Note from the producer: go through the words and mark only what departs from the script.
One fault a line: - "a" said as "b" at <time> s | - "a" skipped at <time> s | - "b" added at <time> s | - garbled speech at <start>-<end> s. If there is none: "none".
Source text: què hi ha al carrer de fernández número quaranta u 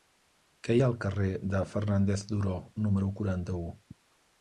- "duró" added at 2.3 s